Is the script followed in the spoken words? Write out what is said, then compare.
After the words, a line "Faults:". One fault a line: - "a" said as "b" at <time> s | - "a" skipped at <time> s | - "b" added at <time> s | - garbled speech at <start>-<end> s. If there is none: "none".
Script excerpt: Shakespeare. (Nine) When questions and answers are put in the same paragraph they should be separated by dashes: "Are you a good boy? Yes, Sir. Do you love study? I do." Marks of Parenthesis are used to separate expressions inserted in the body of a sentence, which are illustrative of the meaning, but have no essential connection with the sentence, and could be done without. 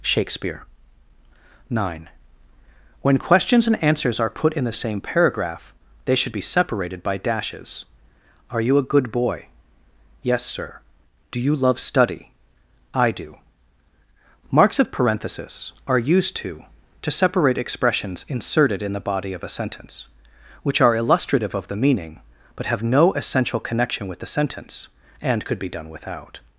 Shakespeare. (Nine) When questions and answers are put in the same paragraph they should be separated by dashes: "Are you a good boy? Yes, Sir. Do you love study? I do." Marks of Parenthesis are used to to separate expressions inserted in the body of a sentence, which are illustrative of the meaning, but have no essential connection with the sentence, and could be done without.
Faults:
- "to" added at 17.0 s